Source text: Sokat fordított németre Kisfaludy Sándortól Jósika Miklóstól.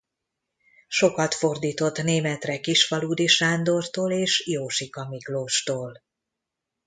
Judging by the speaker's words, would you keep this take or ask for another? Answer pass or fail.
fail